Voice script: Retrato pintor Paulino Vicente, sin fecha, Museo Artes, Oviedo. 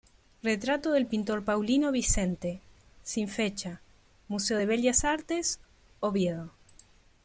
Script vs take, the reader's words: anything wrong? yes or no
yes